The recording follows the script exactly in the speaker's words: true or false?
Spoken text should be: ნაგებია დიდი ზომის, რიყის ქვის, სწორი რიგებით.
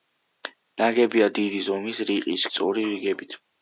false